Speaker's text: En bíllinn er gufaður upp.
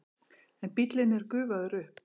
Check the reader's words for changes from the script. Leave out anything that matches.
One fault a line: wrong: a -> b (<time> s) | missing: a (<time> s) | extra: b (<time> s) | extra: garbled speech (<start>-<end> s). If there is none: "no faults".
no faults